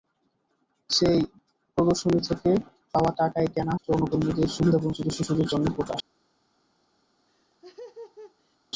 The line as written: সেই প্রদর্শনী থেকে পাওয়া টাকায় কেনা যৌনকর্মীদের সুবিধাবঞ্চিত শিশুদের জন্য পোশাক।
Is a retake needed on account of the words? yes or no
no